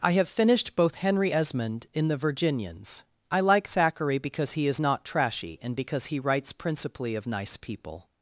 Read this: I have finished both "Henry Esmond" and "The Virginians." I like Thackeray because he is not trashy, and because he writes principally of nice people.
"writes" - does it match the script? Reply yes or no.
yes